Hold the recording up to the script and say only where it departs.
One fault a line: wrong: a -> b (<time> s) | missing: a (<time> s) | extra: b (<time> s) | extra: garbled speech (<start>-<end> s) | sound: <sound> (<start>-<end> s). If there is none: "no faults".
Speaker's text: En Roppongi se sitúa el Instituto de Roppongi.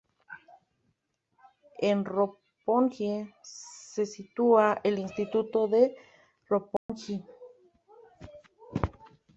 sound: dropout (6.8-6.9 s)